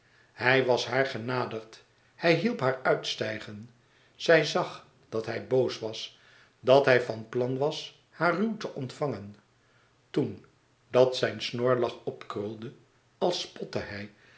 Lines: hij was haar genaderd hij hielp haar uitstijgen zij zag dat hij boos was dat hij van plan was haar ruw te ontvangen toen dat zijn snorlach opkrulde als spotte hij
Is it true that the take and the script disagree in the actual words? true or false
false